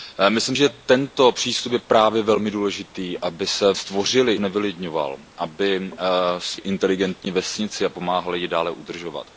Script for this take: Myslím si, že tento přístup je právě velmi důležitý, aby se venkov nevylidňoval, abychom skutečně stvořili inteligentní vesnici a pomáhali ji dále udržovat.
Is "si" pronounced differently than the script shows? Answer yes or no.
yes